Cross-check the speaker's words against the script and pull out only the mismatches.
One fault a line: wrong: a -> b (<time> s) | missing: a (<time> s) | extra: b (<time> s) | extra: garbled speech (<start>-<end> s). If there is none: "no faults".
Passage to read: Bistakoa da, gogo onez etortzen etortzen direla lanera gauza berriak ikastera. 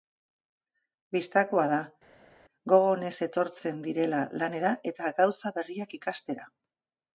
missing: etortzen (3.8 s)
extra: eta (4.9 s)